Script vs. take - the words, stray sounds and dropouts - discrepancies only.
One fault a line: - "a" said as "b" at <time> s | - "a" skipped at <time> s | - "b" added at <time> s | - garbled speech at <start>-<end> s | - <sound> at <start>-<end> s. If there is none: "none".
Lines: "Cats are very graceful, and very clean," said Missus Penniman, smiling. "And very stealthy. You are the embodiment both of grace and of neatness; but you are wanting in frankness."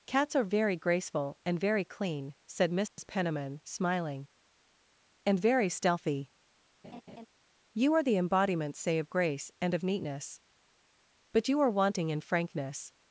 - dropout at 2.9-3.0 s
- laugh at 6.8-7.3 s
- "both" said as "say" at 8.8 s